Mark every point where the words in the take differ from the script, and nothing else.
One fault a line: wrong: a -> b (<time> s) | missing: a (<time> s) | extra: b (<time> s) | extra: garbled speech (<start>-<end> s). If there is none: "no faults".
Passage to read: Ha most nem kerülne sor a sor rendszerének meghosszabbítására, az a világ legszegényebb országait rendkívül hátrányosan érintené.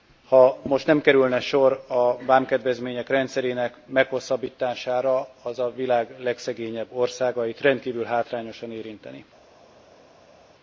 wrong: sor -> vámkedvezmények (2.2 s)